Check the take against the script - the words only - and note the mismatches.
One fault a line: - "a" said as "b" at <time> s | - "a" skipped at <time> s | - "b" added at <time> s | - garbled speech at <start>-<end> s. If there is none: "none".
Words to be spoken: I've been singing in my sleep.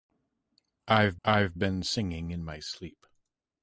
- "I've" added at 1.2 s